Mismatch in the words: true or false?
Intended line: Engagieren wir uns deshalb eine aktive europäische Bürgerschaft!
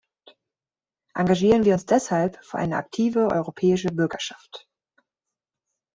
true